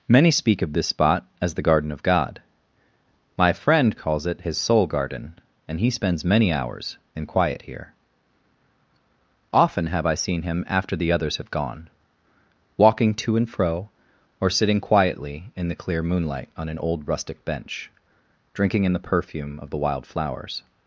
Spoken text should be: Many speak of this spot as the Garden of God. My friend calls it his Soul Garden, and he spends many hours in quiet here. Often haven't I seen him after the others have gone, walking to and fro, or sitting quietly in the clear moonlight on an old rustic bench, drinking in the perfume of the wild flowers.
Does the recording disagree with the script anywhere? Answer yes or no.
yes